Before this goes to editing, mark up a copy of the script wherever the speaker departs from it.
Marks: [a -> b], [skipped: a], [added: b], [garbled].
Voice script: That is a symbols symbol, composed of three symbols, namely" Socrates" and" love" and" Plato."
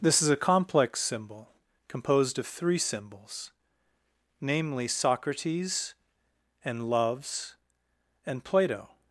[That -> This] is a [symbols -> complex] symbol, composed of three symbols, namely" Socrates" and" [love" -> loves] and" Plato."